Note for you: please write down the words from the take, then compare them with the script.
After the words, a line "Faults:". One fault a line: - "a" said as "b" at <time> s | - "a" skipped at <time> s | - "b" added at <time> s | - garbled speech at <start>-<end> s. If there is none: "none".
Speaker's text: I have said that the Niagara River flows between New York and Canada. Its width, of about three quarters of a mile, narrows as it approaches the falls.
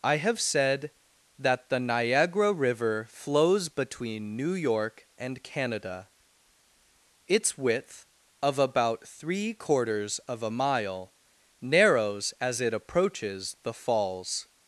I have said that the Niagara River flows between New York and Canada. Its width, of about three quarters of a mile, narrows as it approaches the falls.
Faults:
none